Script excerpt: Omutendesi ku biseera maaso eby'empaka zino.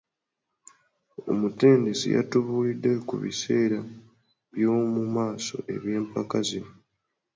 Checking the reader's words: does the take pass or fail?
fail